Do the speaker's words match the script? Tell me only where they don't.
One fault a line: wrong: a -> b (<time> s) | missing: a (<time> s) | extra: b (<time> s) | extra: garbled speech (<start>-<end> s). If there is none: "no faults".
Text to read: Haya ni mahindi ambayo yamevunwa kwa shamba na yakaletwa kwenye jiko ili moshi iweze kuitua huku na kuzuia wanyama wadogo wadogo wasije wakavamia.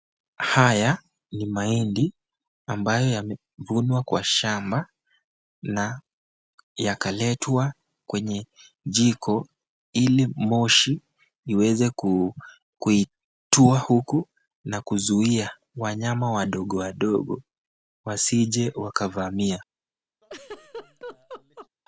no faults